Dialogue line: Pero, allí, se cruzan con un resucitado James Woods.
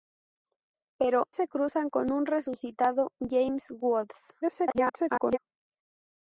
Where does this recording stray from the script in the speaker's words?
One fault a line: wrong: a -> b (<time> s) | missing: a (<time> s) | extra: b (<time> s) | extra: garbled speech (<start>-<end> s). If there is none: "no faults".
missing: allí (1.3 s)
extra: garbled speech (4.4-5.4 s)